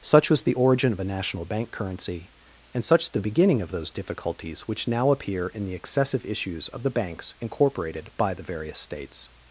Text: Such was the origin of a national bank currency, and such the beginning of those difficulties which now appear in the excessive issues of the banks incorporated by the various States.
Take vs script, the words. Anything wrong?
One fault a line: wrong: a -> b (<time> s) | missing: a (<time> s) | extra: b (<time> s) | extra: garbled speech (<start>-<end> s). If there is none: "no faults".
no faults